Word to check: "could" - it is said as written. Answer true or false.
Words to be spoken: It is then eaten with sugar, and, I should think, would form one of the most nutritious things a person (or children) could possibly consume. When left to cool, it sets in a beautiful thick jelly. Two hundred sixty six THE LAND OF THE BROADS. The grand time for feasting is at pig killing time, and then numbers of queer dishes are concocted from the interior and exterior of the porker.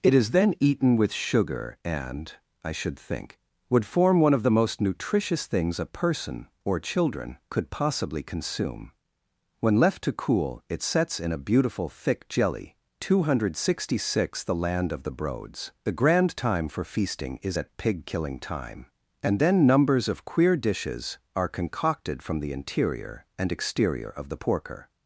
true